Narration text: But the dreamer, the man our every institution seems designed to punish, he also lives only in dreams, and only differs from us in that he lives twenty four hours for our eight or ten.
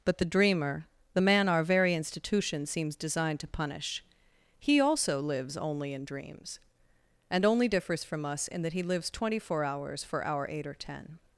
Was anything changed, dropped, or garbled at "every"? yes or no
yes